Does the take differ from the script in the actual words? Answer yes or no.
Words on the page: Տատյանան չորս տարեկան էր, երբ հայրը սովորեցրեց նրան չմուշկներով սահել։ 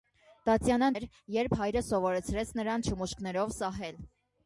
yes